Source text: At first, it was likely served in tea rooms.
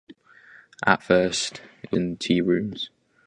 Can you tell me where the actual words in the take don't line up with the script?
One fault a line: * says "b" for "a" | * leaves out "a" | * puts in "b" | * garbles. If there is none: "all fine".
* leaves out "was likely served"